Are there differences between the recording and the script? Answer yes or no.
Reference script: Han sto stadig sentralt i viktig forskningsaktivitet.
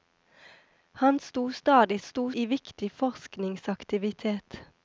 yes